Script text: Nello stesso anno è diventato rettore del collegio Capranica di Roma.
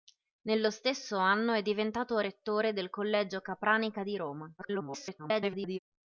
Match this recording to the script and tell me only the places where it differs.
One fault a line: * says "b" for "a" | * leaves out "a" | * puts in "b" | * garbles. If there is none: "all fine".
* garbles